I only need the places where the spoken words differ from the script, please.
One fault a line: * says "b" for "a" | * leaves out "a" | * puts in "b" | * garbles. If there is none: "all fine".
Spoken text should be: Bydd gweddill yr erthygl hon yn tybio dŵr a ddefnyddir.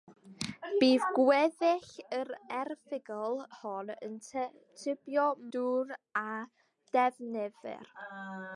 all fine